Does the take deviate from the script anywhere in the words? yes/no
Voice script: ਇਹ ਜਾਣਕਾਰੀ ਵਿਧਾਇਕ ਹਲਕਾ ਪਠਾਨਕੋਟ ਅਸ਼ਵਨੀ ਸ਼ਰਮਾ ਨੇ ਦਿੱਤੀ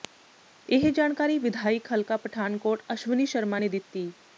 no